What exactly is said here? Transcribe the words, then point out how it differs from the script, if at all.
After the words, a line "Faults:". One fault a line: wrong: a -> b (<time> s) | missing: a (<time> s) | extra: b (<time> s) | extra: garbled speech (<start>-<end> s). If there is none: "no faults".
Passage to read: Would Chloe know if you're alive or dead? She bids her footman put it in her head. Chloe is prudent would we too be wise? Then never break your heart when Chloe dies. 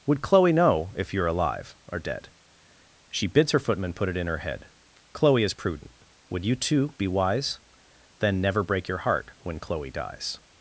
Would Chloe know if you're alive or dead? She bids her footman put it in her head. Chloe is prudent would you too be wise? Then never break your heart when Chloe dies.
Faults:
wrong: we -> you (6.4 s)